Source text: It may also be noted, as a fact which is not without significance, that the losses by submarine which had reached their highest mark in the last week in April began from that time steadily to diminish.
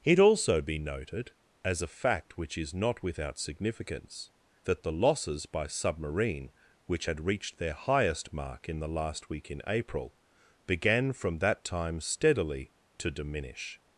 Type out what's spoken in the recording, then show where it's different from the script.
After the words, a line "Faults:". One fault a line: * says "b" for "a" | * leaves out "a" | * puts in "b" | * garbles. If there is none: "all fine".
It also be noted, as a fact which is not without significance, that the losses by submarine which had reached their highest mark in the last week in April began from that time steadily to diminish.
Faults:
* leaves out "may"